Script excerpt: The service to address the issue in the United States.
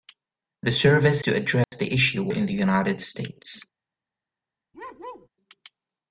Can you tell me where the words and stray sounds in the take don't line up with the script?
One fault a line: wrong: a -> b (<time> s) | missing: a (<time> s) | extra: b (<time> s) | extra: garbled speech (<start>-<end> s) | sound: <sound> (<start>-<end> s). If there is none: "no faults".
sound: dropout (1.6-1.7 s)
sound: bark (4.7-5.3 s)